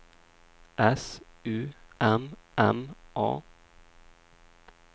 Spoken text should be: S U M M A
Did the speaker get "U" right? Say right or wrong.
right